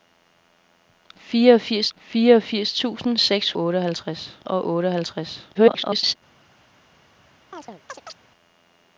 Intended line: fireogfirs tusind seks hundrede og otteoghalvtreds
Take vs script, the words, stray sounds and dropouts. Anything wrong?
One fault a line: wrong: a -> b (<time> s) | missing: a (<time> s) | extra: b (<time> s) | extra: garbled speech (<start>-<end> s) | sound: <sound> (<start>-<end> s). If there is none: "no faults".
extra: fireogfirs (2.0 s)
wrong: hundrede -> otteoghalvtreds (3.6 s)
extra: garbled speech (5.5-6.2 s)
sound: chirp (7.5-8.2 s)